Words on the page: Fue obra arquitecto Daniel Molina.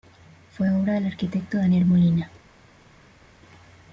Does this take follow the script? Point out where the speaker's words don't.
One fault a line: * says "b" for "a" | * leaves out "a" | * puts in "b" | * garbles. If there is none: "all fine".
* puts in "del"